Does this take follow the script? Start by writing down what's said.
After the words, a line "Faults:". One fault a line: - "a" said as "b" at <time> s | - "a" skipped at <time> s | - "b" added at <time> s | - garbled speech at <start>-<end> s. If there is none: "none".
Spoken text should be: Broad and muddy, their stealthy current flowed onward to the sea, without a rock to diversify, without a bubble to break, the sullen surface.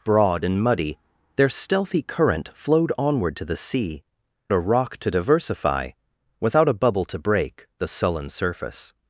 Broad and muddy, their stealthy current flowed onward to the sea, a rock to diversify, without a bubble to break, the sullen surface.
Faults:
- "without" skipped at 4.0 s